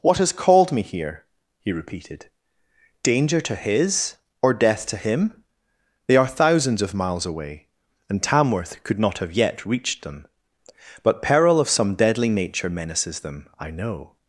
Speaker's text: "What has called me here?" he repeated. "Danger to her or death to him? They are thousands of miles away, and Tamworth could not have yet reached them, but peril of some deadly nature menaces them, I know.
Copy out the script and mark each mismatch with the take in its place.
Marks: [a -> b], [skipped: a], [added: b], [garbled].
"What has called me here?" he repeated. "Danger to [her -> his] or death to him? They are thousands of miles away, and Tamworth could not have yet reached them, but peril of some deadly nature menaces them, I know.